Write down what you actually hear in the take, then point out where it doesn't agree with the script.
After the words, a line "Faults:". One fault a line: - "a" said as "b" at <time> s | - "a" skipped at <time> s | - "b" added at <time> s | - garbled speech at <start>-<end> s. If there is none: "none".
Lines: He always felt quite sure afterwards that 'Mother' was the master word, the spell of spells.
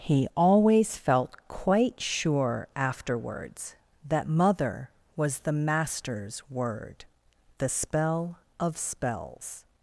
He always felt quite sure afterwards that 'Mother' was the masters word, the spell of spells.
Faults:
- "master" said as "masters" at 5.5 s